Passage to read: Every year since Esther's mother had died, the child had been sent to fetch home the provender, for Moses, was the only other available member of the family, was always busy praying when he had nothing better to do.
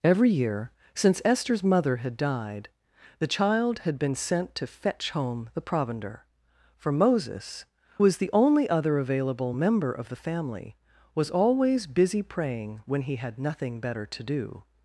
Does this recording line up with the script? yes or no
yes